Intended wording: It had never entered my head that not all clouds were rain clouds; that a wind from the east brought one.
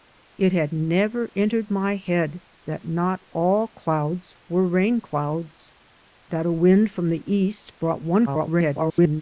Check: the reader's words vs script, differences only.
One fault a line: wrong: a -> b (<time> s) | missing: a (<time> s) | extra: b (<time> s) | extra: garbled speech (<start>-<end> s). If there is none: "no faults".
extra: garbled speech (8.3-9.2 s)